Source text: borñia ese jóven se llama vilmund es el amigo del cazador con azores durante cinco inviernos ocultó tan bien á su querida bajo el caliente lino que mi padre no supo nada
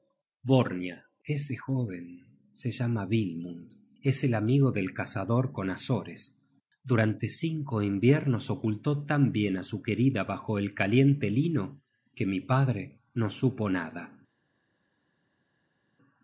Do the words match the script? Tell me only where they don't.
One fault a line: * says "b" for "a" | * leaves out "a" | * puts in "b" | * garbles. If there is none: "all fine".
all fine